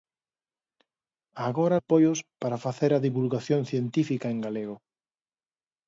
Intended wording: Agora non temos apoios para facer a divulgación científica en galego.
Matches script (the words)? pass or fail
fail